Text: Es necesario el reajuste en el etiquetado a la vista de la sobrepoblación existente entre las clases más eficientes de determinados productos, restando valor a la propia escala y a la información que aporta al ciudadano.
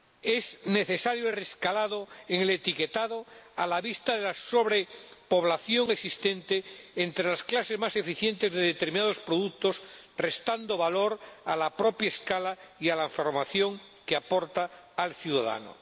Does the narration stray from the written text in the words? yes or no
no